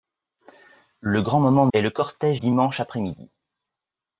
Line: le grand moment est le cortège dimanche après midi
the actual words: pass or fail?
pass